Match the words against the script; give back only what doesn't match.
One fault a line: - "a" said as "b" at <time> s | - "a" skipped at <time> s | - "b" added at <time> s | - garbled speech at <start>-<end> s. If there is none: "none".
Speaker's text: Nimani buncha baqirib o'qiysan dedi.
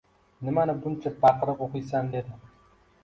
none